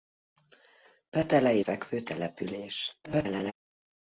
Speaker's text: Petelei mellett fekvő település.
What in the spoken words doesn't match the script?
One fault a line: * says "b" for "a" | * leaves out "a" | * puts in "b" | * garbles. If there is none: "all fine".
* leaves out "mellett"
* garbles